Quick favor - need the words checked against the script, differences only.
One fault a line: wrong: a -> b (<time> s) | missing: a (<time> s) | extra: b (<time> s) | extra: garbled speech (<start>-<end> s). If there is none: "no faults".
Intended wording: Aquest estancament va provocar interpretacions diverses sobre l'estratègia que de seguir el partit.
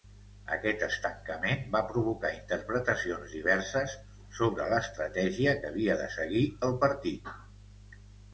extra: havia (5.7 s)